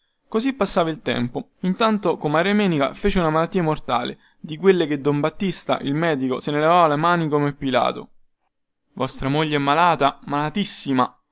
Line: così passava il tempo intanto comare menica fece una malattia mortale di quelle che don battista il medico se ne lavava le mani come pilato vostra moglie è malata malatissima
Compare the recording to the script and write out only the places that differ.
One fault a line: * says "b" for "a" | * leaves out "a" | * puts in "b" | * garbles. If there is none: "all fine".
all fine